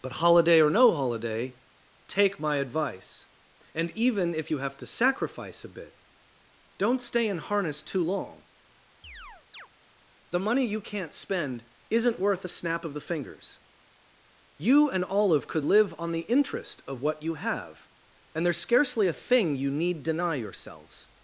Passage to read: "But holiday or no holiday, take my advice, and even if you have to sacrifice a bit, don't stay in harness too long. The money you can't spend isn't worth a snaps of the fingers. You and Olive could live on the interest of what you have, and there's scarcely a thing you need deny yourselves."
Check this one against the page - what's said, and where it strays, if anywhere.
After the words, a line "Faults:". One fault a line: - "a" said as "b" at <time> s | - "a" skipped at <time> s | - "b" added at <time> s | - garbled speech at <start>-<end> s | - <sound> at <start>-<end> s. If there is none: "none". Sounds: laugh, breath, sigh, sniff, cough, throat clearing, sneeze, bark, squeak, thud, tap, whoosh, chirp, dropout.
"But holiday or no holiday, take my advice, and even if you have to sacrifice a bit, don't stay in harness too long. The money you can't spend isn't worth a snap of the fingers. You and Olive could live on the interest of what you have, and there's scarcely a thing you need deny yourselves."
Faults:
- chirp at 9.0-9.7 s
- "snaps" said as "snap" at 12.5 s